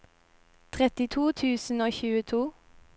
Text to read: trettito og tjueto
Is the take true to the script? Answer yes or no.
no